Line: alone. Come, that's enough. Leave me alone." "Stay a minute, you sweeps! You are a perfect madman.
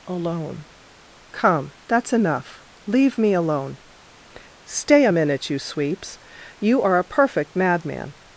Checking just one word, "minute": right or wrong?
right